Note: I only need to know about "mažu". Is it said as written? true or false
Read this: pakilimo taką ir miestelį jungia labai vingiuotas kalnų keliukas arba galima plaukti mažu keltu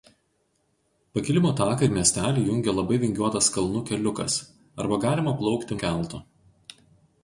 false